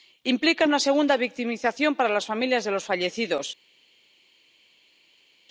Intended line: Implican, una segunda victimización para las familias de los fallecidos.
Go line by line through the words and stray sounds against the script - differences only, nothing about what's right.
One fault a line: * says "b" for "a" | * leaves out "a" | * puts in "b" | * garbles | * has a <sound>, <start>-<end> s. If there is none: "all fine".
all fine